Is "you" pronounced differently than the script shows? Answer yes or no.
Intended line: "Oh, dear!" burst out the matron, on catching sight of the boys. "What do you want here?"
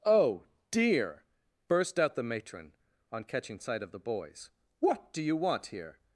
no